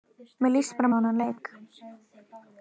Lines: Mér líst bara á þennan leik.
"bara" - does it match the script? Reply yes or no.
yes